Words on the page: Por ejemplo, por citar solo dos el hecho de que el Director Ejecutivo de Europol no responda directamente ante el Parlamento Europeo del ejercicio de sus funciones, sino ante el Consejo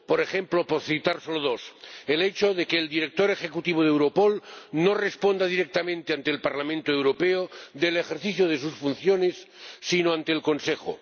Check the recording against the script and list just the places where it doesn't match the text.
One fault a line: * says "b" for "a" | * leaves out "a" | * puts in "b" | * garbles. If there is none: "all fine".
all fine